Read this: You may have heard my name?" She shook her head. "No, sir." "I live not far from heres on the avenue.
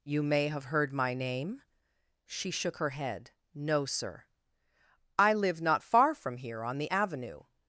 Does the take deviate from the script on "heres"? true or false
true